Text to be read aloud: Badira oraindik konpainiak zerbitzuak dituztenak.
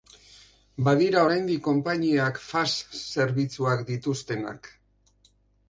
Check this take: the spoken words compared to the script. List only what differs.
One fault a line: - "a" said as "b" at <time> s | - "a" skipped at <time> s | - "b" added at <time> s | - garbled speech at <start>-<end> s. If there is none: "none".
- "fax" added at 2.5 s